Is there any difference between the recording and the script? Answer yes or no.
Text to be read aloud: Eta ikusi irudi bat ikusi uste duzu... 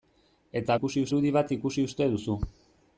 no